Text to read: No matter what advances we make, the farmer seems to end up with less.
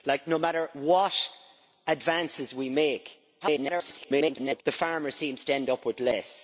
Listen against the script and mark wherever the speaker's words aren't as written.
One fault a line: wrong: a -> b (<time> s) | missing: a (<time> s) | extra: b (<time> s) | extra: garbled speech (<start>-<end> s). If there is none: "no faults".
extra: garbled speech (3.4-4.6 s)